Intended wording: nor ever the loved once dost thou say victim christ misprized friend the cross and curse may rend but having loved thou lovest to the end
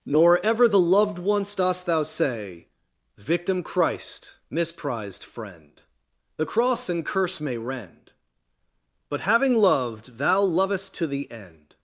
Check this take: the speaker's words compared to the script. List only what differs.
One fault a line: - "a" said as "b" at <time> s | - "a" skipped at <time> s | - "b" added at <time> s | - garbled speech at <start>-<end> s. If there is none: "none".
none